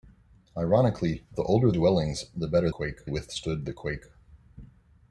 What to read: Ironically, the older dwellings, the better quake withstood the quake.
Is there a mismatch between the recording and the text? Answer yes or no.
no